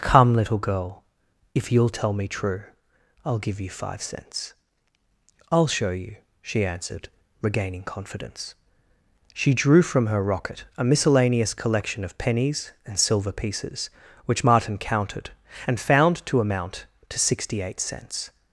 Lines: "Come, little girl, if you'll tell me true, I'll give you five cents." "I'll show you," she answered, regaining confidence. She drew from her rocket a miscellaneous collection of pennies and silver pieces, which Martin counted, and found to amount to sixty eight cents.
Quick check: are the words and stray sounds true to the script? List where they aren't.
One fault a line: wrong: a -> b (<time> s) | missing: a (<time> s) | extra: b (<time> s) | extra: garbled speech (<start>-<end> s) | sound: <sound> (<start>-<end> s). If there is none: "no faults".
no faults